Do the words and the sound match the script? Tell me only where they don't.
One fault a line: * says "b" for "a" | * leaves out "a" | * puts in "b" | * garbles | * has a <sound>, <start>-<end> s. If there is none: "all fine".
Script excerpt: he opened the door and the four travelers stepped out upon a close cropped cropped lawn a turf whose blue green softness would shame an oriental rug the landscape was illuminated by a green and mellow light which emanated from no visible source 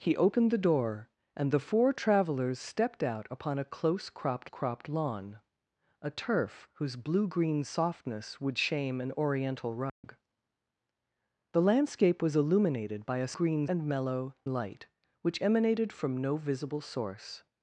* has a dropout, 9.9-10.0 s